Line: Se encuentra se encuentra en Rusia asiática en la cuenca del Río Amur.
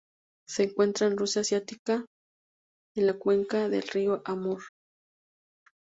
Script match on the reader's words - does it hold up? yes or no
no